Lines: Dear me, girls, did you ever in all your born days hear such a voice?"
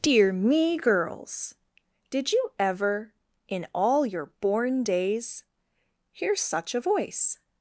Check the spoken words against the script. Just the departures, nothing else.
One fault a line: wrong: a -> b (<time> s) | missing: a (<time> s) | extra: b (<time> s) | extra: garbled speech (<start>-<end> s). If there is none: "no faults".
no faults